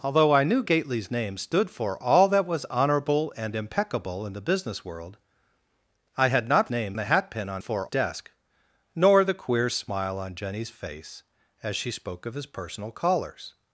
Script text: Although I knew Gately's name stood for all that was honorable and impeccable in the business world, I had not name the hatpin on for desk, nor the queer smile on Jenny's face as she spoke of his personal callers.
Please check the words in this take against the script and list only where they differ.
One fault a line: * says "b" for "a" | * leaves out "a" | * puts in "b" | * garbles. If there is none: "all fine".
all fine